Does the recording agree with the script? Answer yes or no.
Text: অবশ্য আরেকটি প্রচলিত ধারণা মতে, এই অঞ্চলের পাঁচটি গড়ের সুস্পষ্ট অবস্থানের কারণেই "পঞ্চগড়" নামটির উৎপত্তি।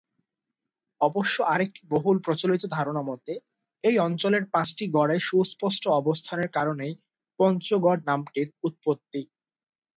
no